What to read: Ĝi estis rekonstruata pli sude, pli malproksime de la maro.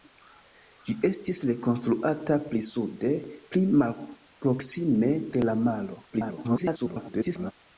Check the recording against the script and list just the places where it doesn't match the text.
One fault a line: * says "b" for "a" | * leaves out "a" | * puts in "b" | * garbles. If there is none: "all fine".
* garbles